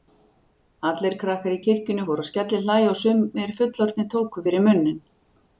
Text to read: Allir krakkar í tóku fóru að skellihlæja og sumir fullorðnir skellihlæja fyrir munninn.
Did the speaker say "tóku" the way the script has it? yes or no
no